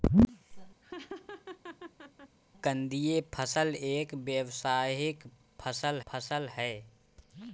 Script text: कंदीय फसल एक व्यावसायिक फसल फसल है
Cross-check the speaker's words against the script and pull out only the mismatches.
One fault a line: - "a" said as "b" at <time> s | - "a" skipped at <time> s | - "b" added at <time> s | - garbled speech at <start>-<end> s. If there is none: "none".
none